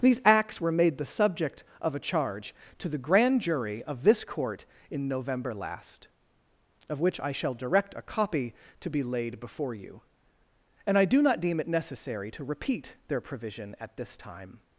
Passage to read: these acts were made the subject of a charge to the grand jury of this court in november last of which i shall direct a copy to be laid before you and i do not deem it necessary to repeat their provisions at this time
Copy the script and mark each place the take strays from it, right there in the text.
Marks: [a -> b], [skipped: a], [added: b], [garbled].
these acts were made the subject of a charge to the grand jury of this court in november last of which i shall direct a copy to be laid before you and i do not deem it necessary to repeat their [provisions -> provision] at this time